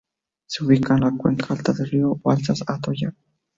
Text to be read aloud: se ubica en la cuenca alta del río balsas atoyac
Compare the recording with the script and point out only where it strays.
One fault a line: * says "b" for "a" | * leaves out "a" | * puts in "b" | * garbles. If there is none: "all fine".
all fine